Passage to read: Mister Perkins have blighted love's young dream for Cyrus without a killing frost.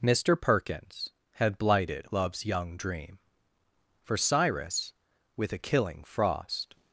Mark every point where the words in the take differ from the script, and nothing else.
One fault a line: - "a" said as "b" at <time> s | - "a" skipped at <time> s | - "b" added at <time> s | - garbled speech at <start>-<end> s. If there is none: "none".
- "have" said as "had" at 1.3 s
- "without" said as "with" at 5.4 s